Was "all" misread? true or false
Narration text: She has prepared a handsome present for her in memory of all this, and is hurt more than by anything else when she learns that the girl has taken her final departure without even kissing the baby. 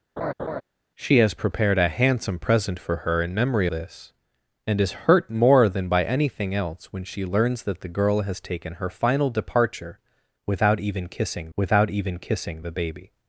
true